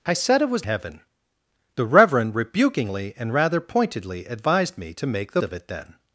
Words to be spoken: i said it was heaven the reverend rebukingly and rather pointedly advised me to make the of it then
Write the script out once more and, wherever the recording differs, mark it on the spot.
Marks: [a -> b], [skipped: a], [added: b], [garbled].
i said it was heaven the reverend rebukingly and rather pointedly advised me to make the of it then